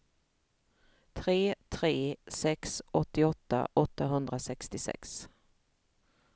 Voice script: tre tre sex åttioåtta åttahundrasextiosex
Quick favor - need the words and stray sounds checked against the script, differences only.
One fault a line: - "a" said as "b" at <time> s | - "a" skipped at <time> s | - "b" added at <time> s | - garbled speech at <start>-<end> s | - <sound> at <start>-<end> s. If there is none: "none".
none